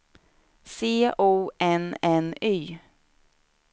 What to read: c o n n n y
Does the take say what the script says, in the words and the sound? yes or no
no